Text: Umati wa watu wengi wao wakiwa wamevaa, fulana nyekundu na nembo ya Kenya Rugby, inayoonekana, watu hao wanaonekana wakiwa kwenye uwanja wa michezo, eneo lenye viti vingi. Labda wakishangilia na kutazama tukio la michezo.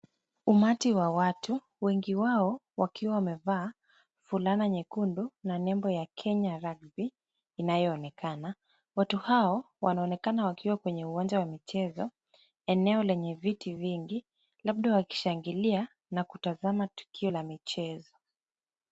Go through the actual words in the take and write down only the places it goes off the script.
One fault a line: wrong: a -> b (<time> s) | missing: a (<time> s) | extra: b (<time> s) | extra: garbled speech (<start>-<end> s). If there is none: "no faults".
no faults